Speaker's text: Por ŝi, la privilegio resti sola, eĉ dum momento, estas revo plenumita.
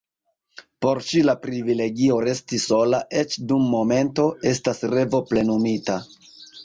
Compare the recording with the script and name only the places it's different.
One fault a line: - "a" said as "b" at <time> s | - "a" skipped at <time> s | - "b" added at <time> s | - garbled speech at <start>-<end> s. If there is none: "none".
none